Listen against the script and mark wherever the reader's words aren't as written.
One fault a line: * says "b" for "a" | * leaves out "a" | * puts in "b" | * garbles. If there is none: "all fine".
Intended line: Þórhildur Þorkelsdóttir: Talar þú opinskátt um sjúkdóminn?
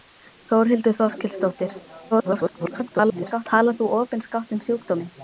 * garbles